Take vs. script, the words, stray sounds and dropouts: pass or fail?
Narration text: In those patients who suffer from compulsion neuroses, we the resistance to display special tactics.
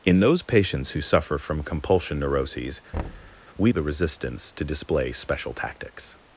fail